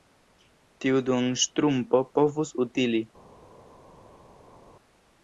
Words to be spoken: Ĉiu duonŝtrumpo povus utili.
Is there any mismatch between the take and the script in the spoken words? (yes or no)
yes